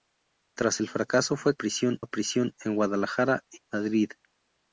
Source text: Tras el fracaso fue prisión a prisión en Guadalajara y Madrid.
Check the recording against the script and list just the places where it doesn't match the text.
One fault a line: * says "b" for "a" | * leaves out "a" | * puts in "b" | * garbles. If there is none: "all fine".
all fine